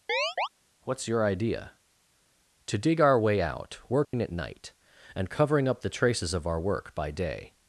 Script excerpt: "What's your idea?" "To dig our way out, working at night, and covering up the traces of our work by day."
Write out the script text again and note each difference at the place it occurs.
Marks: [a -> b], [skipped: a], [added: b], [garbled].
"What's your idea?" "To dig our way out, working at night, and covering up the traces of our work by day."